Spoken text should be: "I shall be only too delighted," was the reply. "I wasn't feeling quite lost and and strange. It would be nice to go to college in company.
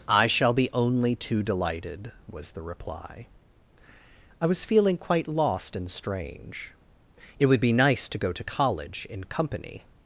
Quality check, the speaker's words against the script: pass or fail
fail